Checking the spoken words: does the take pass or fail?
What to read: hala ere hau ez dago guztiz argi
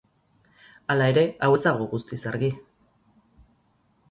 pass